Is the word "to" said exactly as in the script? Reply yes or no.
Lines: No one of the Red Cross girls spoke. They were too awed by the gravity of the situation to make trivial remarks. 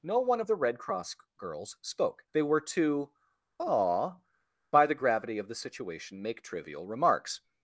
no